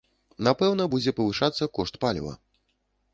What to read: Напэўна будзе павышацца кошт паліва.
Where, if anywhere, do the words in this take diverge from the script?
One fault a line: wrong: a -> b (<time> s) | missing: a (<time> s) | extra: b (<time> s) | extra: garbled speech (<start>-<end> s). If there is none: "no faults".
no faults